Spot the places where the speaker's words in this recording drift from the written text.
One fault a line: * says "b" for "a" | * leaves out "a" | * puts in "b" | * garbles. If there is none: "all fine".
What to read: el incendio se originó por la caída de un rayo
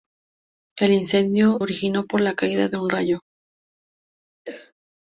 * leaves out "se"